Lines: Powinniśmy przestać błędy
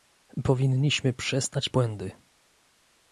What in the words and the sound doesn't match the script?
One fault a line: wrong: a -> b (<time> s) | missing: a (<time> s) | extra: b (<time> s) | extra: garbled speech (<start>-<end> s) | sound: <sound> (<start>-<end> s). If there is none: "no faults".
no faults